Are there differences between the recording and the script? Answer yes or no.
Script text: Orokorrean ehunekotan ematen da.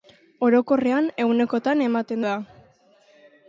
no